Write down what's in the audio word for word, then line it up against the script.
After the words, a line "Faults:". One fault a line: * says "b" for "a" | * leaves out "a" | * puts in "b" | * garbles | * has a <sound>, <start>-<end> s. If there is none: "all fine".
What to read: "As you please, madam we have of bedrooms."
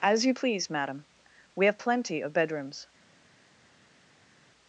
"As you please, madam we have plenty of bedrooms."
Faults:
* puts in "plenty"